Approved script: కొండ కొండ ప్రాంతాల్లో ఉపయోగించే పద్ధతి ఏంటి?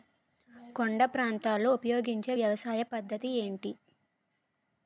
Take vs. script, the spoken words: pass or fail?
fail